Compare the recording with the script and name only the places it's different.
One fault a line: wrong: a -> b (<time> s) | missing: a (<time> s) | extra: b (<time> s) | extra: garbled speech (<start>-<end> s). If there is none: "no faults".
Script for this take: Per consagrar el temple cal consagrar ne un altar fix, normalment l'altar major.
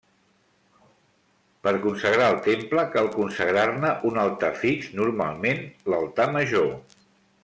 no faults